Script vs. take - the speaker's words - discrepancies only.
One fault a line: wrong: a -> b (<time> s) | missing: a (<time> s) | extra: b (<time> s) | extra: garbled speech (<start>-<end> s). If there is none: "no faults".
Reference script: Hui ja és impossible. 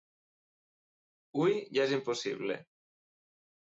no faults